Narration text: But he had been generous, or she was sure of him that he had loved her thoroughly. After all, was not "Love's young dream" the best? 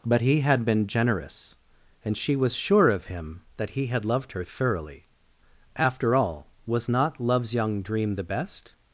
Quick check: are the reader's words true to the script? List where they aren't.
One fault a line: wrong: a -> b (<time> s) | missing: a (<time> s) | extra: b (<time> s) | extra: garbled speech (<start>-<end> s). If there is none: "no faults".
wrong: or -> and (2.0 s)